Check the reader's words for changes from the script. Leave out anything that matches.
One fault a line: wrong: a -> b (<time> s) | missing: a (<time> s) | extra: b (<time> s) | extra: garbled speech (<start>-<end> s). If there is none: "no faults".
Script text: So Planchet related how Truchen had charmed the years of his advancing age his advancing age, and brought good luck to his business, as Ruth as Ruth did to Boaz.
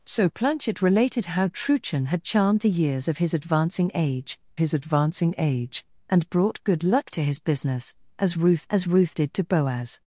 no faults